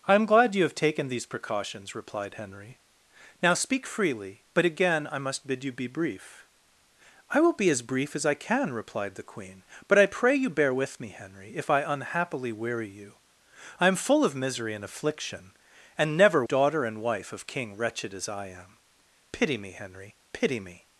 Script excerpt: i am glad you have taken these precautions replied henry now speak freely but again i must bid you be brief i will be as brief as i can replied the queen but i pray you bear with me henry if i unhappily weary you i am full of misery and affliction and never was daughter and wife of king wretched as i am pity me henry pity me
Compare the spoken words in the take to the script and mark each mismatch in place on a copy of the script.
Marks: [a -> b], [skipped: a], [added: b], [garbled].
i am glad you have taken these precautions replied henry now speak freely but again i must bid you be brief i will be as brief as i can replied the queen but i pray you bear with me henry if i unhappily weary you i am full of misery and affliction and never [skipped: was] daughter and wife of king wretched as i am pity me henry pity me